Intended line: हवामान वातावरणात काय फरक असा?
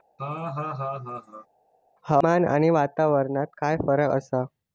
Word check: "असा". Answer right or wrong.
right